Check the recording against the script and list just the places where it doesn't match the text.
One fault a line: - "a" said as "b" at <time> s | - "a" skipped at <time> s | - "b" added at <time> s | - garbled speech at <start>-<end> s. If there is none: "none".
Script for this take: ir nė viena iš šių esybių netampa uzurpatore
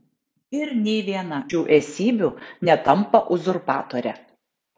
- "iš" skipped at 1.4 s